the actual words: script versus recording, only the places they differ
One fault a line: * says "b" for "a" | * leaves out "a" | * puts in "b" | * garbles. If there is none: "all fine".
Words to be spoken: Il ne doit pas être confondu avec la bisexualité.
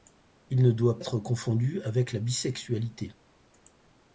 * leaves out "pas"